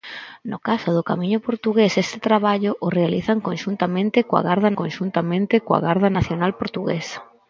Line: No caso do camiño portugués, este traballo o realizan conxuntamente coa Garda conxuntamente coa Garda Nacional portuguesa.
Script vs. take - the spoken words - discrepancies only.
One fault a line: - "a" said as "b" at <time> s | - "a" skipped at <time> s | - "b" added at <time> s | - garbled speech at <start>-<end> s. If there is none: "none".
none